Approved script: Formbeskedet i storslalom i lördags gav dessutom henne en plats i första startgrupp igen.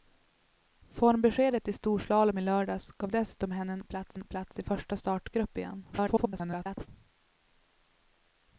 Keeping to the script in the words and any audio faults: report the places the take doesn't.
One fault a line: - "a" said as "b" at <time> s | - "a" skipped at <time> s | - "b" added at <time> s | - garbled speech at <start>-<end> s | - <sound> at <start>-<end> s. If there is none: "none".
- "en plats" added at 4.1 s
- garbled speech at 5.9-6.9 s